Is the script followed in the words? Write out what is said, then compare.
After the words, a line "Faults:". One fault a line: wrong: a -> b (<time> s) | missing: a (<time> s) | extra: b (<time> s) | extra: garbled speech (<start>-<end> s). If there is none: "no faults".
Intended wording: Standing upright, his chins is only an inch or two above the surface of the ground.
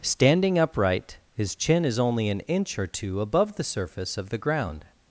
Standing upright, his chin is only an inch or two above the surface of the ground.
Faults:
wrong: chins -> chin (1.6 s)